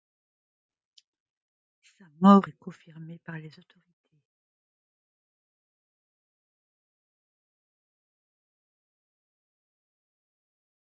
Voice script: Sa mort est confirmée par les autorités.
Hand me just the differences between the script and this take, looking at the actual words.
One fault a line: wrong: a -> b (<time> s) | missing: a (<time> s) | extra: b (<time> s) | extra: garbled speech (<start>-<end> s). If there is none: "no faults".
no faults